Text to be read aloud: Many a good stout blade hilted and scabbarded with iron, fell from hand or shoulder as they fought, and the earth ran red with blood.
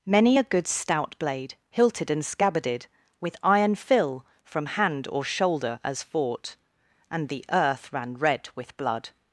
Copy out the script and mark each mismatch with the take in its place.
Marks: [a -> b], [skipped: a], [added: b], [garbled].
Many a good stout blade hilted and scabbarded with iron, [fell -> fill] from hand or shoulder as [skipped: they] fought, and the earth ran red with blood.